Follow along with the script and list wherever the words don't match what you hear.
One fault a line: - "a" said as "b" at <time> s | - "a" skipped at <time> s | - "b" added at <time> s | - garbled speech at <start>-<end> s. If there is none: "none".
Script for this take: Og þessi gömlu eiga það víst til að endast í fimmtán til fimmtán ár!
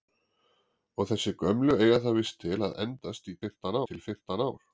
none